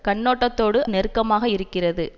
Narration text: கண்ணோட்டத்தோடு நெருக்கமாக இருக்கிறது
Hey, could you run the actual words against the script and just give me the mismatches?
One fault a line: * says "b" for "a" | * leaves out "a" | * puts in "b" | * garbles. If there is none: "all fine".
all fine